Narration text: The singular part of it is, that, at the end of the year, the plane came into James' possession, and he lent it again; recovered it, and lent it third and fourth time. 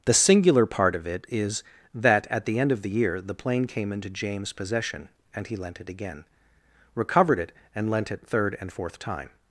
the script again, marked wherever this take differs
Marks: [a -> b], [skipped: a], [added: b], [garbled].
The singular part of it is, that, at the end of the year, the plane came into James' possession, and he lent it again; recovered it, and lent it third and fourth time.